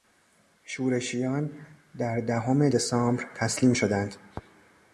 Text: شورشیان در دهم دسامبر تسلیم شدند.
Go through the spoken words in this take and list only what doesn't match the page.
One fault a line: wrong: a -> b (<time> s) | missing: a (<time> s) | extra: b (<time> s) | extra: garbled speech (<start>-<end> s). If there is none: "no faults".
no faults